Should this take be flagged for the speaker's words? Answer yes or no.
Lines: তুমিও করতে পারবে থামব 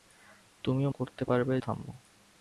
no